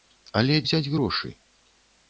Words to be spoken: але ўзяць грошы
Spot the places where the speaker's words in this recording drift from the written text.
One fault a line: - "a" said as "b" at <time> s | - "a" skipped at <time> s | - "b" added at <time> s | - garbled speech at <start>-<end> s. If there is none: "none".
none